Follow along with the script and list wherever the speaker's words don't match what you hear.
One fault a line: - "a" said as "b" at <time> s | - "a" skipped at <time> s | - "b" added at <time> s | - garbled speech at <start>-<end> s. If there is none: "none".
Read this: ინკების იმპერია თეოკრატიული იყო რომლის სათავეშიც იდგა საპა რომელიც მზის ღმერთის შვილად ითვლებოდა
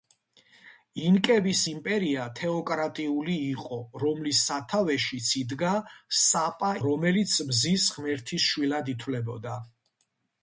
none